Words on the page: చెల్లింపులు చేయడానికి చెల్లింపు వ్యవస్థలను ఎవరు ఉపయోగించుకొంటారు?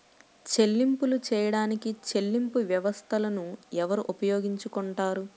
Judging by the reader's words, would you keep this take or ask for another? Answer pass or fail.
pass